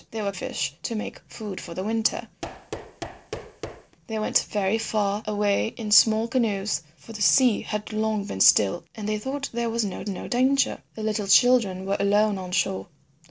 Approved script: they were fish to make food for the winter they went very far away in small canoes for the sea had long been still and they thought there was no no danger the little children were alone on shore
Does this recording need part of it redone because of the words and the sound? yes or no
yes